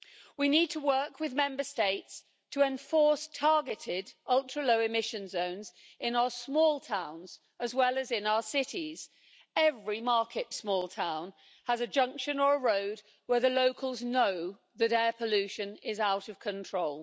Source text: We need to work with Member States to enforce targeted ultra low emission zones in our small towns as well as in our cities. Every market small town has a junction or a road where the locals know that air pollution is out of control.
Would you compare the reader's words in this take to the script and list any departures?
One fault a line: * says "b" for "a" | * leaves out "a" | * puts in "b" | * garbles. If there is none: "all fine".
all fine